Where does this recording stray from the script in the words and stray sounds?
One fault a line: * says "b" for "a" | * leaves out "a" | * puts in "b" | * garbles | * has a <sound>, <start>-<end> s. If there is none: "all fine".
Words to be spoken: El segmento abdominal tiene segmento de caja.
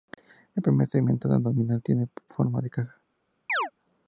* puts in "primer"
* says "forma" for "segmento"
* has a chirp, 3.5-3.7 s